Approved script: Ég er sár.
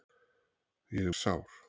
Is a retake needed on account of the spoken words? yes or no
no